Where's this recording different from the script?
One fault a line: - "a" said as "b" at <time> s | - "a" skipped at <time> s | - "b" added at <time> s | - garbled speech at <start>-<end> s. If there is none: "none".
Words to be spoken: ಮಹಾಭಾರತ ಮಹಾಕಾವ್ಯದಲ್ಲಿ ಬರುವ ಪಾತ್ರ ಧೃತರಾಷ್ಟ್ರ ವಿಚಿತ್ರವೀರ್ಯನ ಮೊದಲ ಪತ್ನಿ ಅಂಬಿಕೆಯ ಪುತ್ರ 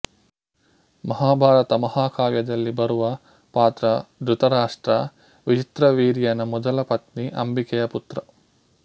none